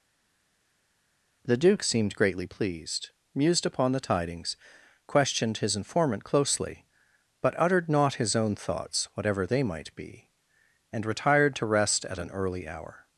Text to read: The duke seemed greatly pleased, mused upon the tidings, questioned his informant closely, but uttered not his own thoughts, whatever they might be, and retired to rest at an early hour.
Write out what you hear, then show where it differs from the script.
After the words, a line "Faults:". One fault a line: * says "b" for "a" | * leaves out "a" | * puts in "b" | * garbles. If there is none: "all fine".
The duke seemed greatly pleased, mused upon the tidings, questioned his informant closely, but uttered not his own thoughts, whatever they might be, and retired to rest at an early hour.
Faults:
all fine